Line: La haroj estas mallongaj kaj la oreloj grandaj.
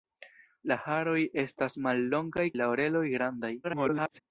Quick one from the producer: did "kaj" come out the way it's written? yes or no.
no